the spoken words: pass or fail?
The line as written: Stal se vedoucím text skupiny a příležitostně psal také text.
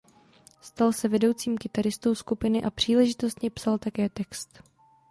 fail